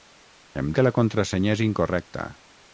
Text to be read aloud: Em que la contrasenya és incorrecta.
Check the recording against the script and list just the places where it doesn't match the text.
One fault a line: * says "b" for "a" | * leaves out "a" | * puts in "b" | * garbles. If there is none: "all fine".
all fine